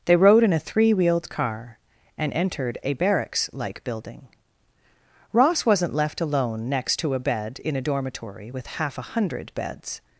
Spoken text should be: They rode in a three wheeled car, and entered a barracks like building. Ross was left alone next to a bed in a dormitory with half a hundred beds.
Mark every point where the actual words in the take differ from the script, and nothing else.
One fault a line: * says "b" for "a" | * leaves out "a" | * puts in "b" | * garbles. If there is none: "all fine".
* says "wasn't" for "was"